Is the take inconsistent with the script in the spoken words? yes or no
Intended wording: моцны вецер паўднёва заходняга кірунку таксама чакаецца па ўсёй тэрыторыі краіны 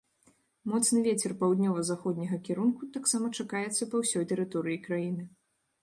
no